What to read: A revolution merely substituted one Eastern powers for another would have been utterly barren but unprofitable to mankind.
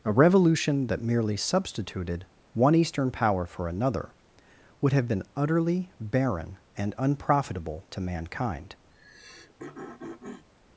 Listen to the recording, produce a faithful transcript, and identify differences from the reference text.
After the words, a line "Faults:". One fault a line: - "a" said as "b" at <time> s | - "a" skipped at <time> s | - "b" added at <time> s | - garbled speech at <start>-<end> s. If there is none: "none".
A revolution that merely substituted one Eastern power for another would have been utterly barren and unprofitable to mankind.
Faults:
- "that" added at 0.9 s
- "powers" said as "power" at 3.1 s
- "but" said as "and" at 6.8 s